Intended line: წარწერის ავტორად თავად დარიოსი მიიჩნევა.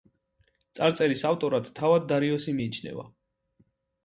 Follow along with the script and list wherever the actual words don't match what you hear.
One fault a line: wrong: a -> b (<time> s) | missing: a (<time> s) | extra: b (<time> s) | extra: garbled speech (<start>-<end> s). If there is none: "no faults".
no faults